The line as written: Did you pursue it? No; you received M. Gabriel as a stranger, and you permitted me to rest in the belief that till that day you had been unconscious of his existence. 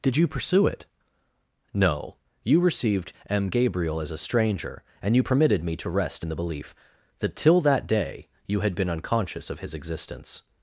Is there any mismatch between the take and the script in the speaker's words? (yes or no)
no